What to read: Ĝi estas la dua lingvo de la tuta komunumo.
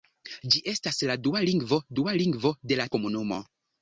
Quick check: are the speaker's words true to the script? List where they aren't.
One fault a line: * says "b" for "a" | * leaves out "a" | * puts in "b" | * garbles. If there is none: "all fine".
* puts in "dua lingvo"
* leaves out "tuta"